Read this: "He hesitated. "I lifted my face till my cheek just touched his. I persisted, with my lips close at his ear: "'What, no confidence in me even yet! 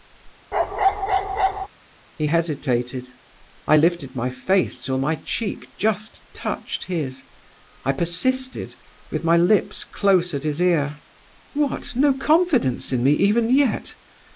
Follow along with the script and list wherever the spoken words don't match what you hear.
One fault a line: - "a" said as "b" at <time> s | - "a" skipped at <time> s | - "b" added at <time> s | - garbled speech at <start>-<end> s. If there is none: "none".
none